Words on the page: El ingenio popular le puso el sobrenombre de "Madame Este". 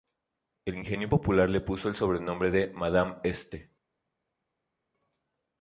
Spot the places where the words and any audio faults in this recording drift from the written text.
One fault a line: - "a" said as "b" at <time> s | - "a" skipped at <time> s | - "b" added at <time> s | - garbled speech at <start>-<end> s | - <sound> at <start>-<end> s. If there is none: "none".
none